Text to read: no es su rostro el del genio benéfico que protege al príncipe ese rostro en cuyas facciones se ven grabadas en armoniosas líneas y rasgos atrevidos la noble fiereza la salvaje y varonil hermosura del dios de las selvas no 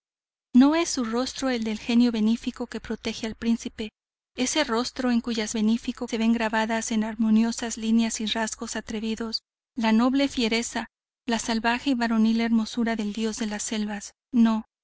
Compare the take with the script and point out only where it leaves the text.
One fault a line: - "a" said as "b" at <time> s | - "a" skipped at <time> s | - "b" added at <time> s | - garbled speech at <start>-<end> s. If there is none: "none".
- "facciones" said as "benéfico" at 5.5 s